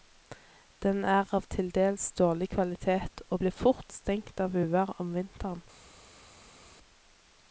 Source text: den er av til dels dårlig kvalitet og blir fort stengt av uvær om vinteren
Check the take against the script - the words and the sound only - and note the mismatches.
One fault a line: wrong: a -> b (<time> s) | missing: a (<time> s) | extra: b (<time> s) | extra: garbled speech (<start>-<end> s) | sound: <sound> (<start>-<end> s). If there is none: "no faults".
no faults